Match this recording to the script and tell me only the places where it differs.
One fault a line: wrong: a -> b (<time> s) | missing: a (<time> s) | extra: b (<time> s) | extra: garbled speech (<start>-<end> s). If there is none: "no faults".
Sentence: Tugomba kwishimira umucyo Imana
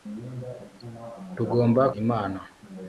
missing: kwishimira umucyo (1.8 s)